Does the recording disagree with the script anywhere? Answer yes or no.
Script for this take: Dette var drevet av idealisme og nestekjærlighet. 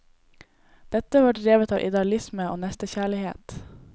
no